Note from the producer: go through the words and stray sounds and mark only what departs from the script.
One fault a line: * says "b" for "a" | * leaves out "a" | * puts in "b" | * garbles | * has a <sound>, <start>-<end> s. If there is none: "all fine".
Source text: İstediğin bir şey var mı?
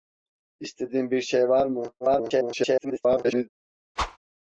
* garbles
* has a whoosh, 4.0-4.2 s